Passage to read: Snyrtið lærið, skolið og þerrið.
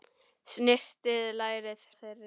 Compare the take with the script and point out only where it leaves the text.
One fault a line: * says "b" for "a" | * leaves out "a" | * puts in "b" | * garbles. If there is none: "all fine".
* leaves out "skolið"